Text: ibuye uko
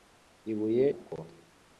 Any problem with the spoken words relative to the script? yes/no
no